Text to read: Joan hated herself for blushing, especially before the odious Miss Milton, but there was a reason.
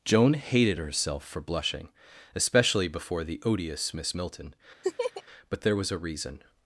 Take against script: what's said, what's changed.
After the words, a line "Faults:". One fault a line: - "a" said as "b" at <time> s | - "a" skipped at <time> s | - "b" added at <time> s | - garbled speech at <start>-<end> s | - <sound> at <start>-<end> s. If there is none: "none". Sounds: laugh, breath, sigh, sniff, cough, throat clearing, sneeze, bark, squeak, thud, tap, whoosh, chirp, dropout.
Joan hated herself for blushing, especially before the odious Miss Milton, but there was a reason.
Faults:
- laugh at 4.8-5.2 s